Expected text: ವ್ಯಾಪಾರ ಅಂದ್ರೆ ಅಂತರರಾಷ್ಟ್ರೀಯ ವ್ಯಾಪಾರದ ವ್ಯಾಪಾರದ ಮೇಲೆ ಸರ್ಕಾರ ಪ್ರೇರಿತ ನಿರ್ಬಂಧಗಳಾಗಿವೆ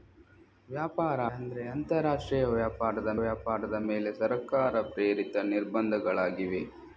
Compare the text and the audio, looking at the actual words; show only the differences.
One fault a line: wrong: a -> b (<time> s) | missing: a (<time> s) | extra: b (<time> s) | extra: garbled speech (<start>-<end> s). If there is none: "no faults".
no faults